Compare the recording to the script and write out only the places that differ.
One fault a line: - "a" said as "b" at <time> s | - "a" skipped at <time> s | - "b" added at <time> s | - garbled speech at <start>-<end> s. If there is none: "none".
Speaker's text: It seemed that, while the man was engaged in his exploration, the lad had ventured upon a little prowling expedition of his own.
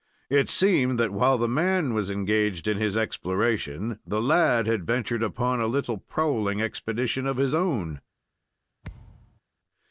none